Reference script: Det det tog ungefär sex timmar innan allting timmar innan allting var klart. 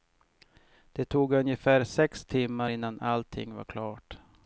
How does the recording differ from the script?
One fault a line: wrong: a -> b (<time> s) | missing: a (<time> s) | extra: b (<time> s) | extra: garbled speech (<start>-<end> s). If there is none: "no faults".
missing: det (1.1 s)
missing: timmar innan allting (3.5 s)